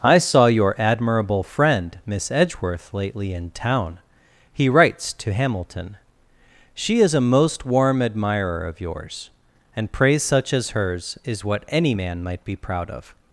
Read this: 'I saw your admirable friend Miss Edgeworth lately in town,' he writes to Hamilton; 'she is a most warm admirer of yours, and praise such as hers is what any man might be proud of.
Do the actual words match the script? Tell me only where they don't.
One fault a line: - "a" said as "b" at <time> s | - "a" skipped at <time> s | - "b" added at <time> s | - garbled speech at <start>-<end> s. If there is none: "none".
none